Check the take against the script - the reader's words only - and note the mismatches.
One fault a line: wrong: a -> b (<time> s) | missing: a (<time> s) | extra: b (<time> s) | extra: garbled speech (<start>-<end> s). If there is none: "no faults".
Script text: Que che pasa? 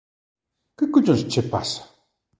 extra: collóns (0.9 s)